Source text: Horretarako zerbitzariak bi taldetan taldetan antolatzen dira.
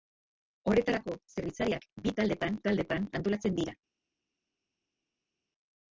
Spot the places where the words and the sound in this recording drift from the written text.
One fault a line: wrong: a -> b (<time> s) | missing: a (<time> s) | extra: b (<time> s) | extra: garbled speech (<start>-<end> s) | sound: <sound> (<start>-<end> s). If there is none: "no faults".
no faults